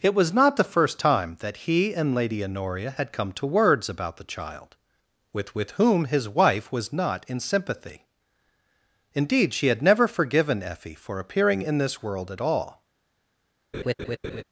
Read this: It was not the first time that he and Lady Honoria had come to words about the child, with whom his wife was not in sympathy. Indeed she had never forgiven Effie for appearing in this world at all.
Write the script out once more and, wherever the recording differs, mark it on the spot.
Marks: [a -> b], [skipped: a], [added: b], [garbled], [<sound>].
It was not the first time that he and Lady Honoria had come to words about the child, with [added: with] whom his wife was not in sympathy. Indeed she had never forgiven Effie for appearing in this world at all. [laugh]